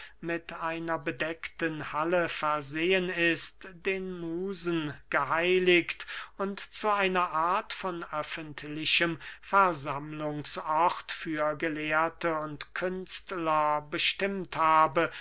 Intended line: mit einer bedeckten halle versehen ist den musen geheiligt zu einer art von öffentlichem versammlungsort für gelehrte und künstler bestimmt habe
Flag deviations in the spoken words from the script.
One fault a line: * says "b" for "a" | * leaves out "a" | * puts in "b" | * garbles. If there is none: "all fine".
* puts in "und"